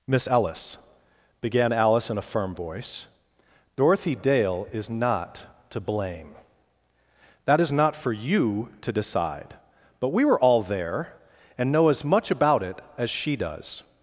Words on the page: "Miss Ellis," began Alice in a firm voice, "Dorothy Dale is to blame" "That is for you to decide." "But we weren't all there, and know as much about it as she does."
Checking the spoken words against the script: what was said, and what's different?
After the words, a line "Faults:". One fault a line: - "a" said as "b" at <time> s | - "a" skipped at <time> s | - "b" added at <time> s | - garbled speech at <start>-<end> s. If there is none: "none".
"Miss Ellis," began Alice in a firm voice, "Dorothy Dale is not to blame" "That is not for you to decide." "But we were all there, and know as much about it as she does."
Faults:
- "not" added at 4.9 s
- "not" added at 7.7 s
- "weren't" said as "were" at 10.2 s